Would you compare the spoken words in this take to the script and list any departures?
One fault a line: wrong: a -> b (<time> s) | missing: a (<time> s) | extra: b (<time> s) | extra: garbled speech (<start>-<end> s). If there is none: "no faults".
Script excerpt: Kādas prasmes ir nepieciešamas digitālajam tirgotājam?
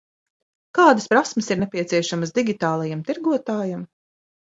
no faults